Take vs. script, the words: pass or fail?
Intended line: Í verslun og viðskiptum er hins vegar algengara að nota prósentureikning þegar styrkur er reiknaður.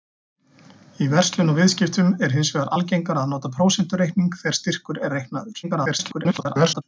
fail